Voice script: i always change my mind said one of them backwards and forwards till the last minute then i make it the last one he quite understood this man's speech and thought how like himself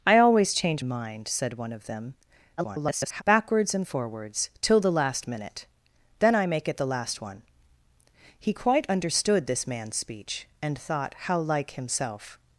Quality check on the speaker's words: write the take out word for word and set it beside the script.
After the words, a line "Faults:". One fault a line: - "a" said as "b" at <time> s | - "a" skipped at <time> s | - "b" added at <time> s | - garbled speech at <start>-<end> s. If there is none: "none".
i always change mind said one of them [garbled] backwards and forwards till the last minute then i make it the last one he quite understood this man's speech and thought how like himself
Faults:
- "my" skipped at 0.8 s
- garbled speech at 2.6-3.2 s